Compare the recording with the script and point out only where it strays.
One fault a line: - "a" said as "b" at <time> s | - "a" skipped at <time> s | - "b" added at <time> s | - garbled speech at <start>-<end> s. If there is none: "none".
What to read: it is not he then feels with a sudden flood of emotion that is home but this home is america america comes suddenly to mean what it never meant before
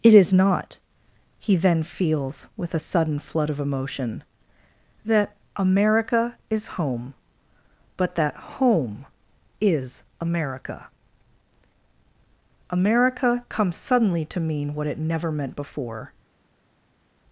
- "america" added at 5.6 s
- "this" said as "that" at 8.2 s